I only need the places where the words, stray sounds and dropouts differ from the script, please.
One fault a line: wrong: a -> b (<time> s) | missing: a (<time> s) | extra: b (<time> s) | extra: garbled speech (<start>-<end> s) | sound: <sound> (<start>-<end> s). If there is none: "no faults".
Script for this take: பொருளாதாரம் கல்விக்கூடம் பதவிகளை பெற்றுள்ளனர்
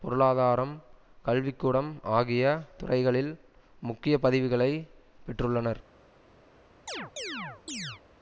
extra: ஆகிய துறைகளில் முக்கிய (2.1 s)
sound: chirp (6.9-8.0 s)